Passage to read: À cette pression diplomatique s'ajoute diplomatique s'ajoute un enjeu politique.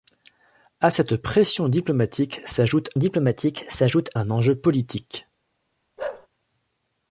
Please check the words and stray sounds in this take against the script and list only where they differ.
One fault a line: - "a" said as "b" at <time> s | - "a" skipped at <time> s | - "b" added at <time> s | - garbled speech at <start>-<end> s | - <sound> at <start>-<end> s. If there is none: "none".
- bark at 6.0-6.3 s